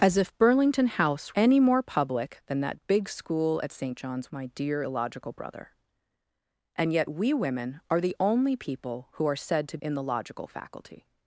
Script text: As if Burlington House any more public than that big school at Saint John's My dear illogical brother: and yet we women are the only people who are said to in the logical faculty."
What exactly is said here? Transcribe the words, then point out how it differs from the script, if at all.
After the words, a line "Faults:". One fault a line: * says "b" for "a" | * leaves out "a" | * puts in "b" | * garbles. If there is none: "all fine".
As if Burlington House any more public than that big school at Saint John's My dear illogical brother: and yet we women are the only people who are said to in the logical faculty."
Faults:
all fine